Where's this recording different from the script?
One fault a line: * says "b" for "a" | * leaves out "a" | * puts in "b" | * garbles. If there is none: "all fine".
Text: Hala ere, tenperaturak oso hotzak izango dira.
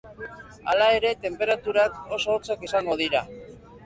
all fine